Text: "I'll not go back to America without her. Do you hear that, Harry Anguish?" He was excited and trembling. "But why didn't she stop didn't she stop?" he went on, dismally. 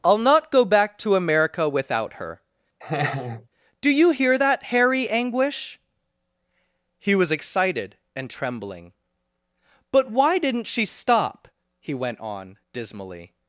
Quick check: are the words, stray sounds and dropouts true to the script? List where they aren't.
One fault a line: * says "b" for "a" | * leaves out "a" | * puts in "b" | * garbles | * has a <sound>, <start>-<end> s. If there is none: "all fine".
* has a laugh, 2.8-3.5 s
* leaves out "didn't she stop"